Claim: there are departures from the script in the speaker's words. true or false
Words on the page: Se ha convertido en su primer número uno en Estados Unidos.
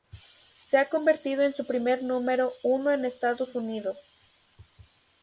false